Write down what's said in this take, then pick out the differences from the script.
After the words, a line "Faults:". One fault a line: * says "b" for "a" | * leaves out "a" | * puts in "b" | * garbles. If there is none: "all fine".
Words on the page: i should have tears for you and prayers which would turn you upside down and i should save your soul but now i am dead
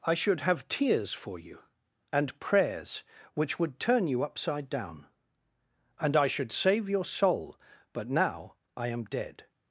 i should have tears for you and prayers which would turn you upside down and i should save your soul but now i am dead
Faults:
all fine